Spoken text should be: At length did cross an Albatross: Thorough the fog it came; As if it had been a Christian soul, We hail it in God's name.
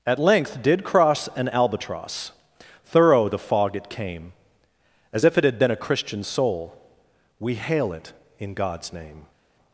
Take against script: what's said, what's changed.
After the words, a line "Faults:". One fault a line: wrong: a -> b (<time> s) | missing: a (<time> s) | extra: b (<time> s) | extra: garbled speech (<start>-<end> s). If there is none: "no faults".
At length did cross an Albatross: Thorough the fog it came; As if it had been a Christian soul, We hail it in God's name.
Faults:
no faults